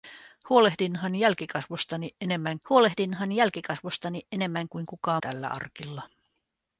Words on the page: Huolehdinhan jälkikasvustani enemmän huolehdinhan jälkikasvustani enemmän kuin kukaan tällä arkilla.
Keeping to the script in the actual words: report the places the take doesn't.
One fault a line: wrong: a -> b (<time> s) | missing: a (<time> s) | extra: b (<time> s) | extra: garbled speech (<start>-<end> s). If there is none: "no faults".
no faults